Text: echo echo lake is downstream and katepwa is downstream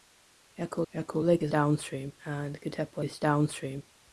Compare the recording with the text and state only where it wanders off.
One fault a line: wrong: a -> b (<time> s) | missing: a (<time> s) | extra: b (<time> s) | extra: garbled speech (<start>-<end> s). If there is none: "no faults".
no faults